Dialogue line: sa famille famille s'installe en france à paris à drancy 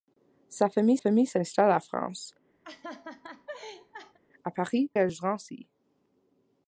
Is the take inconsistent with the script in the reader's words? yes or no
no